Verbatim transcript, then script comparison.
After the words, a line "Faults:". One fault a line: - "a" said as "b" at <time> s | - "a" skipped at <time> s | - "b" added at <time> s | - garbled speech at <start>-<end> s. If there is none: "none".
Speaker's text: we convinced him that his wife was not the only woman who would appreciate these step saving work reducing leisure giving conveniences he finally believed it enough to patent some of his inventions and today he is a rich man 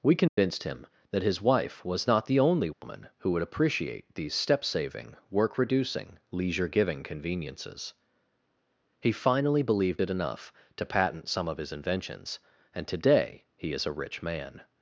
we convinced him that his wife was not the only woman who would appreciate these step saving work reducing leisure giving conveniences he finally believed it enough to patent some of his inventions and today he is a rich man
Faults:
none